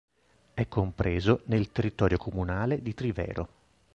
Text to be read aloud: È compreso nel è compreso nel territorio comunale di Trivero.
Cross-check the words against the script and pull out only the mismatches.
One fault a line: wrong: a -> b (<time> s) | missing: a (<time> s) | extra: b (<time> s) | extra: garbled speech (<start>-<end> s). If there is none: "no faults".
missing: è compreso nel (1.7 s)